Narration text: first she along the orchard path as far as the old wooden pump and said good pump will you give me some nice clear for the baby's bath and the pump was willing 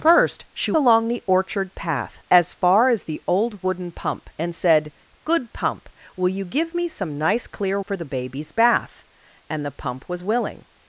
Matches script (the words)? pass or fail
pass